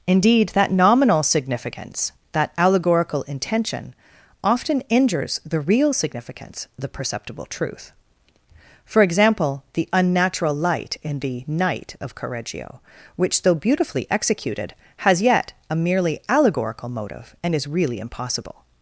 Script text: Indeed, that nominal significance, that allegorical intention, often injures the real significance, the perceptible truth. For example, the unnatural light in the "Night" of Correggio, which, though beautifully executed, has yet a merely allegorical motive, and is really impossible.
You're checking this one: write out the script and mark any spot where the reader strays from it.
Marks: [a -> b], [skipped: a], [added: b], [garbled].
Indeed, that nominal significance, that allegorical intention, often injures the real significance, the perceptible truth. For example, the unnatural light in the "Night" of Correggio, which, though beautifully executed, has yet a merely allegorical motive, and is really impossible.